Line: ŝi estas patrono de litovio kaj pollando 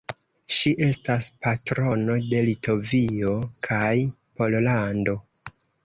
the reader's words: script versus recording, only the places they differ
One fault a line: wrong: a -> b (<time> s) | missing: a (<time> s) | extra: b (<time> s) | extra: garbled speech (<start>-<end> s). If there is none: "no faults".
no faults